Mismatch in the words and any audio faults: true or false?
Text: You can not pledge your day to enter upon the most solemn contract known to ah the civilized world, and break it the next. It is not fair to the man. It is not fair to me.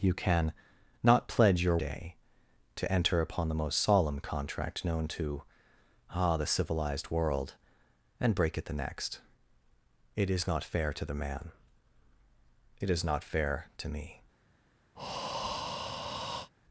true